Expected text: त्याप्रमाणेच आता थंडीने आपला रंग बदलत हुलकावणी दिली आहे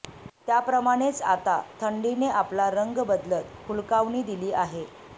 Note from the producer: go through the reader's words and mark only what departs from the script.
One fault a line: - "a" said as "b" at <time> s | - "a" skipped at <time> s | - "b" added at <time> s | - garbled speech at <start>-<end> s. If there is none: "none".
none